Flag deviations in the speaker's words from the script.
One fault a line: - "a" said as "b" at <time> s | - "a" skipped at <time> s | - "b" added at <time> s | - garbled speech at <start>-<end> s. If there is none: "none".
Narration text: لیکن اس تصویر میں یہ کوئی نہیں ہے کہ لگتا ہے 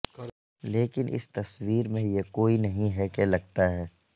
none